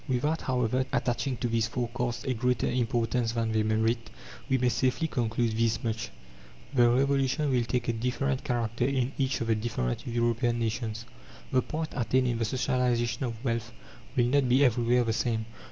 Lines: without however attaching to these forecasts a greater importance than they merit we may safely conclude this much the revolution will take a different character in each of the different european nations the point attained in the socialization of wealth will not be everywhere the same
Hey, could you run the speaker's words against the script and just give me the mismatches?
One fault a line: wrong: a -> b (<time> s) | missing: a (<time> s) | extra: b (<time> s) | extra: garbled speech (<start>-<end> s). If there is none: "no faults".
no faults